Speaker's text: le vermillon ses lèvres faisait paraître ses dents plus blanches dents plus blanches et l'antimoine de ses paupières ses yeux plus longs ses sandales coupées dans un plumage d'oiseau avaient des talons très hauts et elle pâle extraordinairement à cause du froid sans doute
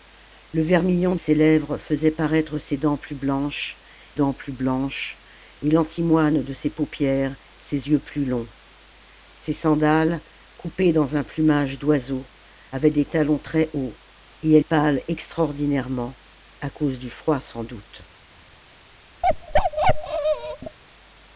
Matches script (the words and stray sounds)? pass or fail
fail